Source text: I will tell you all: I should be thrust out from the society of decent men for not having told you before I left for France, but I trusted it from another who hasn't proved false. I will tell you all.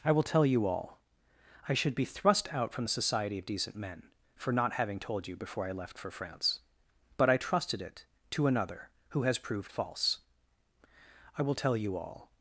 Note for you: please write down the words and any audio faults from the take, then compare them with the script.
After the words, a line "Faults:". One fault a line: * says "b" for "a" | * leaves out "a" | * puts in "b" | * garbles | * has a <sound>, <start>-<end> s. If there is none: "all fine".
I will tell you all: I should be thrust out from the society of decent men for not having told you before I left for France, but I trusted it to another who has proved false. I will tell you all.
Faults:
* says "to" for "from"
* says "has" for "hasn't"